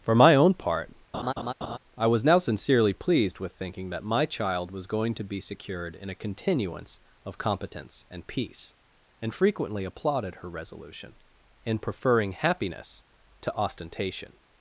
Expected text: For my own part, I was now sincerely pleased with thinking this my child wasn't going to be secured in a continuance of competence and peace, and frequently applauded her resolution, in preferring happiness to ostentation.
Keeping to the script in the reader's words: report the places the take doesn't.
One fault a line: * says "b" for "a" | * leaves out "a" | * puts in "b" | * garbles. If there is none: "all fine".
* says "that" for "this"
* says "was" for "wasn't"